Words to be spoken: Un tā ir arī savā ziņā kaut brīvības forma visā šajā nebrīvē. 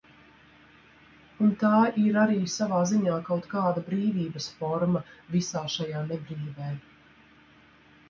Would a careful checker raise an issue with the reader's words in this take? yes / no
yes